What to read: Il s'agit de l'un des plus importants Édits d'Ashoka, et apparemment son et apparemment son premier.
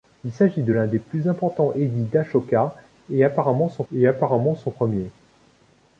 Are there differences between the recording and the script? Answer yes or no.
no